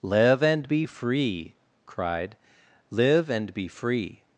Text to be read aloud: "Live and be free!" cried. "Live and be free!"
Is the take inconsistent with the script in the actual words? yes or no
no